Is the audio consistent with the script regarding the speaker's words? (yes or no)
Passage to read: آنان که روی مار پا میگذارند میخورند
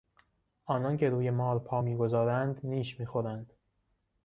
no